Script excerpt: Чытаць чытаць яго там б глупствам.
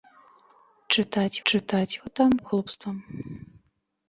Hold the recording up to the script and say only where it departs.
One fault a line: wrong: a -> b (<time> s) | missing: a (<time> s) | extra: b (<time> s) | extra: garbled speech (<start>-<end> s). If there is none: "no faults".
no faults